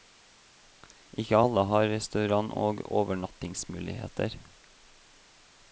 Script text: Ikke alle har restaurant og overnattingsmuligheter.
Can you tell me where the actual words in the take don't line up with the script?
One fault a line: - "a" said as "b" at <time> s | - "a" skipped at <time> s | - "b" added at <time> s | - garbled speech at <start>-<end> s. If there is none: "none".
none